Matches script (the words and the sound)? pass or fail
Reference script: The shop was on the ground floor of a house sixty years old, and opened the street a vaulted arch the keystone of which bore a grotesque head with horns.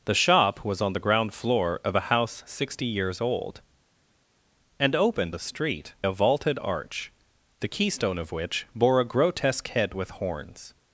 pass